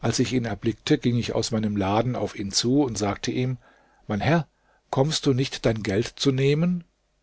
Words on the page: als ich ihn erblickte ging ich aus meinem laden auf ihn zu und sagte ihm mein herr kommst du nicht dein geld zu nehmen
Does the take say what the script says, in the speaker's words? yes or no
yes